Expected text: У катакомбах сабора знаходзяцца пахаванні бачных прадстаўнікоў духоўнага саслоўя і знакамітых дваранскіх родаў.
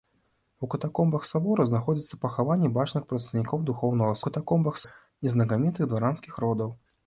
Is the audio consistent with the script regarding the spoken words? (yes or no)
no